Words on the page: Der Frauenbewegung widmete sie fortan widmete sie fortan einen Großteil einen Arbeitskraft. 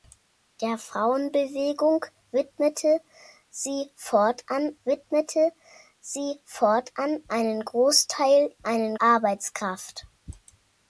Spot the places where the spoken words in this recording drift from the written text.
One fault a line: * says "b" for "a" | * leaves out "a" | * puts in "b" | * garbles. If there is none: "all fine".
all fine